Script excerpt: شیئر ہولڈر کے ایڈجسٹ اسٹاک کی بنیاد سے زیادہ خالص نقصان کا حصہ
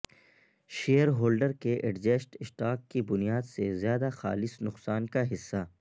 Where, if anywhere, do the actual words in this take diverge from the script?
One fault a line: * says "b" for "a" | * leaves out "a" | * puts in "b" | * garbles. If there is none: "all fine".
all fine